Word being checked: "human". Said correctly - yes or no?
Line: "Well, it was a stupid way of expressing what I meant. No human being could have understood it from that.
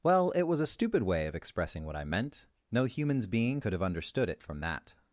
no